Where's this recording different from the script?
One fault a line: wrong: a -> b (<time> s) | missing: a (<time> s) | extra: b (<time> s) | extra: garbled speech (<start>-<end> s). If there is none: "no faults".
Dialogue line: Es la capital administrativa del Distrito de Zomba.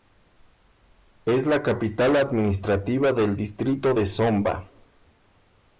no faults